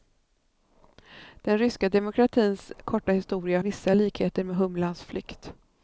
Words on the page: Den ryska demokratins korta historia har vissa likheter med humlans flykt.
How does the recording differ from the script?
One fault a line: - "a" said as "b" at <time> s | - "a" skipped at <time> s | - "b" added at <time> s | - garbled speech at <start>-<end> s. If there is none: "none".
- "har" skipped at 3.6 s